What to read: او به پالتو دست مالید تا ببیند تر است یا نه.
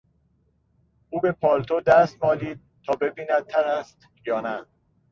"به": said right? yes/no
yes